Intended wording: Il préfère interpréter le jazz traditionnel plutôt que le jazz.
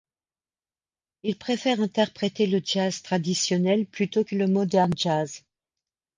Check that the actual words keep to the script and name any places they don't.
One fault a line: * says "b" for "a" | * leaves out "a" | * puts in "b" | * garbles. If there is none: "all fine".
* puts in "modern"